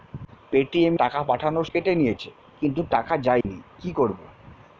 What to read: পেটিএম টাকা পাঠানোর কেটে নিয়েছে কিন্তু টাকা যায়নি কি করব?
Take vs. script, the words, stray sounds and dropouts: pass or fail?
fail